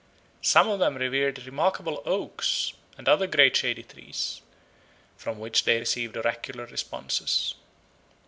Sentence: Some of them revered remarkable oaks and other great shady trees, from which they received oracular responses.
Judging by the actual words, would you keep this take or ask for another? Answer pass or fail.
pass